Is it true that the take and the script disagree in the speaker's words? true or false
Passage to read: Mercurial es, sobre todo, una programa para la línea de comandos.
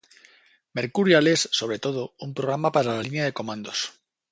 true